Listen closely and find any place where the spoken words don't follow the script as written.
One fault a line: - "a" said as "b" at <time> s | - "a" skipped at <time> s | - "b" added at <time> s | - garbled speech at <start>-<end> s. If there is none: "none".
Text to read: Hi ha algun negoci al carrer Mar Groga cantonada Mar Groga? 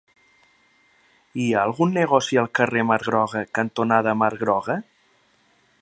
none